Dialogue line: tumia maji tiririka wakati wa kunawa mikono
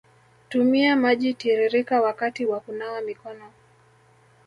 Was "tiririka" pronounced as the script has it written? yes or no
yes